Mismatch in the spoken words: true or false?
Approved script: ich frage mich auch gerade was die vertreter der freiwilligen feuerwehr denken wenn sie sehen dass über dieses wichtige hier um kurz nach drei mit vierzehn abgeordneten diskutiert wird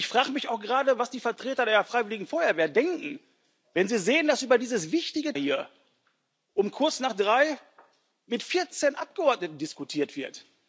false